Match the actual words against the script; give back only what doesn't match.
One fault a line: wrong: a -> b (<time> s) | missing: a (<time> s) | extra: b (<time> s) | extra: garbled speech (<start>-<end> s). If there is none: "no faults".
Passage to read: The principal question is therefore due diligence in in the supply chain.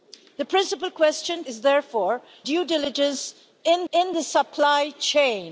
no faults